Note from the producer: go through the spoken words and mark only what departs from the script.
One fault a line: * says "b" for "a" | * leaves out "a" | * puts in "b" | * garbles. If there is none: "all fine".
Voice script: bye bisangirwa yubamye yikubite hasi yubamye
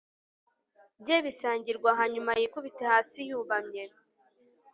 * says "hanyuma" for "yubamye"